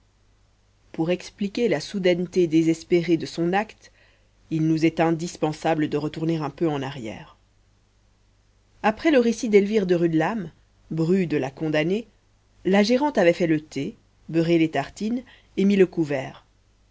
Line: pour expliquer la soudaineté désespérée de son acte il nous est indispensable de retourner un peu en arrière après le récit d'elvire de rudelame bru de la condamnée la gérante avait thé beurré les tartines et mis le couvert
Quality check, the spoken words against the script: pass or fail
fail